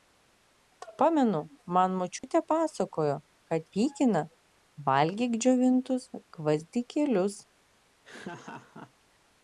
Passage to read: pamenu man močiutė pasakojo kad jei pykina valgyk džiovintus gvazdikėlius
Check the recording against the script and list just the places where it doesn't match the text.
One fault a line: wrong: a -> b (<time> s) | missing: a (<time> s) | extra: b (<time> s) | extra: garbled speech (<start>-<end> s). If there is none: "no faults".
missing: jei (3.7 s)